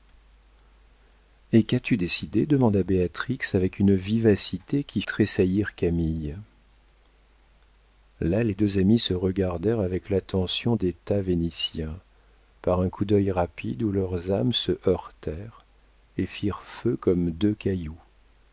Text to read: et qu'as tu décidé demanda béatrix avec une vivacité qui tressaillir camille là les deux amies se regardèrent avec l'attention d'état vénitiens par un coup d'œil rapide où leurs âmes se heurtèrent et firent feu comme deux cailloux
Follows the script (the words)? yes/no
yes